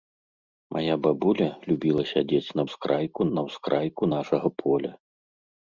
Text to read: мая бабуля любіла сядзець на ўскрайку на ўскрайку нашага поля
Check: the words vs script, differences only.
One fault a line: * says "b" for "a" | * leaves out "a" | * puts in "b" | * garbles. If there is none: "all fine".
all fine